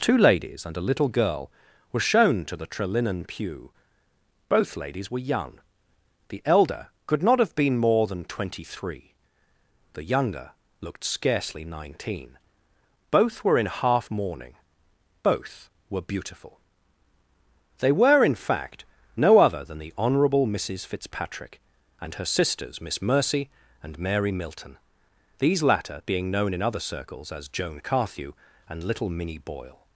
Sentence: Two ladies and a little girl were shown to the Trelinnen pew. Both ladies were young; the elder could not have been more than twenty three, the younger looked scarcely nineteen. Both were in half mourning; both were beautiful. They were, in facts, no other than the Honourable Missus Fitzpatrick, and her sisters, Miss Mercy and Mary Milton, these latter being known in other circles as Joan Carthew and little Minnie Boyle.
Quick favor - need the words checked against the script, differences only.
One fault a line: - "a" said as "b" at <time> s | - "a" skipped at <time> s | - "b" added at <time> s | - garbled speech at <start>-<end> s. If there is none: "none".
- "facts" said as "fact" at 18.3 s